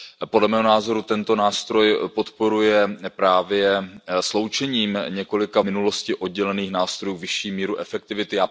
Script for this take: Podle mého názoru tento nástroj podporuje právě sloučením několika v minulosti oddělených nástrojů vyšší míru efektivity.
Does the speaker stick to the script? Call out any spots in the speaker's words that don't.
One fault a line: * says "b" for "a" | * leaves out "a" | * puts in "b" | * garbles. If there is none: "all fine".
all fine